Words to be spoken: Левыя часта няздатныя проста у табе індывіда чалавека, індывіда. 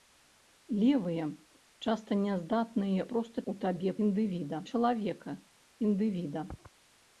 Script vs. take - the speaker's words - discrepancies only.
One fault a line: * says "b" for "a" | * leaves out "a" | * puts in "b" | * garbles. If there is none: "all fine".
all fine